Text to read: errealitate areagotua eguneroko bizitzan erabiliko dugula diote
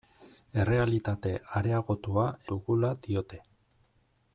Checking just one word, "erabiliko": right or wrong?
wrong